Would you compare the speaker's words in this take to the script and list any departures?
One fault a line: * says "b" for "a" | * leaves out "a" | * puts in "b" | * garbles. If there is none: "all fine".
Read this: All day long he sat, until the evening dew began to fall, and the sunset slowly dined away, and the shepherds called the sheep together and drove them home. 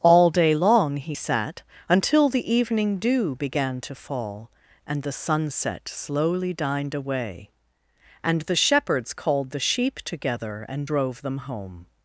all fine